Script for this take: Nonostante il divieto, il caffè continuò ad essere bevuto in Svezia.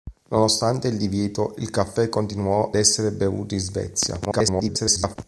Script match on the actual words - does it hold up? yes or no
no